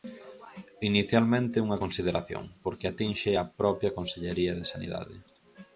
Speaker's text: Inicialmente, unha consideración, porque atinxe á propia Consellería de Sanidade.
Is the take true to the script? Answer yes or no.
yes